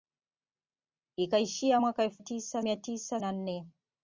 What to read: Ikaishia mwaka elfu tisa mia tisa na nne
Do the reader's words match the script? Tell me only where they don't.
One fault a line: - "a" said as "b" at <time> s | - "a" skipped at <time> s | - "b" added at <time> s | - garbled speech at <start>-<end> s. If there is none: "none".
none